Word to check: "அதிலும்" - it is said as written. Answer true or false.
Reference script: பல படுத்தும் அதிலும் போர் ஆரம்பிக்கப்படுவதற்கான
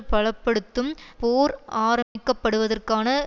false